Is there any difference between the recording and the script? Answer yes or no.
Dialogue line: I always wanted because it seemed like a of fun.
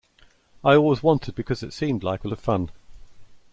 no